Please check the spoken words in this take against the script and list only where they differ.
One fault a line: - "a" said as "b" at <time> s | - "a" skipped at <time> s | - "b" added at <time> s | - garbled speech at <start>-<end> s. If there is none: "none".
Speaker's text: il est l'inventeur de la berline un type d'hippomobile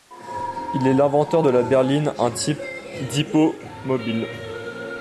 none